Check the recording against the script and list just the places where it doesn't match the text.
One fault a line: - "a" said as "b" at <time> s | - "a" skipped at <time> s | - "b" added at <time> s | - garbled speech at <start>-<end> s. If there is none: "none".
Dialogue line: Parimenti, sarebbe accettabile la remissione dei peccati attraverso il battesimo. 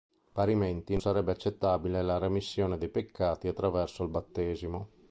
none